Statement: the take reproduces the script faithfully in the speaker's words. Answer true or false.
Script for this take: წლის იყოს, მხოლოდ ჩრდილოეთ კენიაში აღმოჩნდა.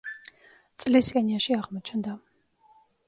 false